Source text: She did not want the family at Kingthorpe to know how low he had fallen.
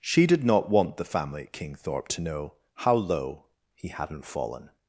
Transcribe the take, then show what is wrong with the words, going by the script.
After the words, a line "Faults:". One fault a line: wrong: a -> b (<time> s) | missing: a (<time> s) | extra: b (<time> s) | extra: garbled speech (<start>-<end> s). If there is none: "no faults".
She did not want the family at Kingthorpe to know how low he hadn't fallen.
Faults:
wrong: had -> hadn't (3.9 s)